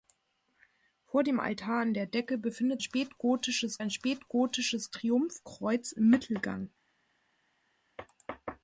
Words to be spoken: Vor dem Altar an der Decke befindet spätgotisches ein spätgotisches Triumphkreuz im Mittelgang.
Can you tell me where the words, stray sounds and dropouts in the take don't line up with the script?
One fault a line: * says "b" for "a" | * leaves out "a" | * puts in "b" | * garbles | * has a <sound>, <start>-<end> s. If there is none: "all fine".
all fine